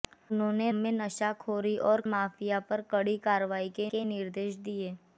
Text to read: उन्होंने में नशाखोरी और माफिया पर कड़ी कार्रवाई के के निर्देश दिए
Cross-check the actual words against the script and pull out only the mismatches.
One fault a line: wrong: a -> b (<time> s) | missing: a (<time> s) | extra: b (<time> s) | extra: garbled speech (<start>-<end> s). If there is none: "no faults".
no faults